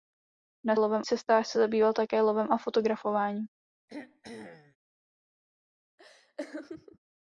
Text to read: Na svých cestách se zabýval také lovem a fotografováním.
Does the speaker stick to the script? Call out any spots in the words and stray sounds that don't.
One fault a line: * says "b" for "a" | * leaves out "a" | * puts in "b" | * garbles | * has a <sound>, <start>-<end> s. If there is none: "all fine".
* says "lovem" for "svých"
* has a throat clearing, 3.9-4.8 s
* has a laugh, 6.0-7.0 s